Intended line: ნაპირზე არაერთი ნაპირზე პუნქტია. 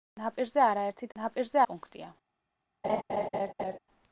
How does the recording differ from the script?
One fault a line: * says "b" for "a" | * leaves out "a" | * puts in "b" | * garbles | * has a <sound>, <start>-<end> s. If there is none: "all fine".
* has a laugh, 2.8-3.8 s